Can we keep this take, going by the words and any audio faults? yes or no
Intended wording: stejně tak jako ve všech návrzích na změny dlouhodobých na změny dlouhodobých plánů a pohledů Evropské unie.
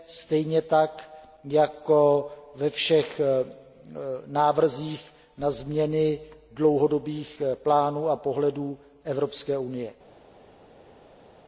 no